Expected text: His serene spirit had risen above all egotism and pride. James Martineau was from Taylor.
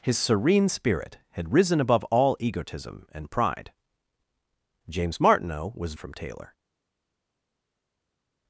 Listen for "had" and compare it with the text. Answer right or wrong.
right